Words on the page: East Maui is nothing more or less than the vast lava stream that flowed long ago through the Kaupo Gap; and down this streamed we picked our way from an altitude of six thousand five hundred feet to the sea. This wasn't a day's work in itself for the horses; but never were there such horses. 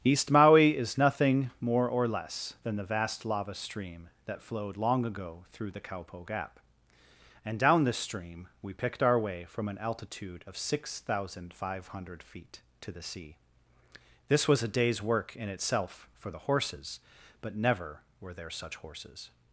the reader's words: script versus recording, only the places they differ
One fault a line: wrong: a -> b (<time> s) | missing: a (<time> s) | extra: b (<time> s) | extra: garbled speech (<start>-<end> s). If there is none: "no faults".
wrong: streamed -> stream (8.0 s)
wrong: wasn't -> was (14.5 s)